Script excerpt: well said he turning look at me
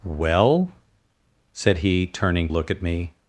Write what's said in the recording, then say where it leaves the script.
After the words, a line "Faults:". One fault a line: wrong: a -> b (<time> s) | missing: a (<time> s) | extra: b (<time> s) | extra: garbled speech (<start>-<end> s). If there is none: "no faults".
well said he turning look at me
Faults:
no faults